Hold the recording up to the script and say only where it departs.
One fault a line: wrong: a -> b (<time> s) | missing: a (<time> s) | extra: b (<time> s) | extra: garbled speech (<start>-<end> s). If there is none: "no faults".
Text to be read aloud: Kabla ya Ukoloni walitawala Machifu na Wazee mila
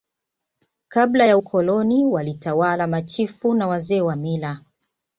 extra: wa (4.0 s)